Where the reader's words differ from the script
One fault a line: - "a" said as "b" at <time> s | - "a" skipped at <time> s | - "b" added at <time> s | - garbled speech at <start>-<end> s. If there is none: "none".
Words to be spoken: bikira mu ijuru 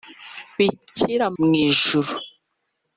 none